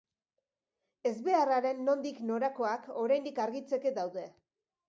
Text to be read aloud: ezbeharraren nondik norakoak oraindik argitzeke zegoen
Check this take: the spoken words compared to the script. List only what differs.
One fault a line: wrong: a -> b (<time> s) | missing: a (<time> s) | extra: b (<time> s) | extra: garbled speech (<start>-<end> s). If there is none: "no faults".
wrong: zegoen -> daude (4.0 s)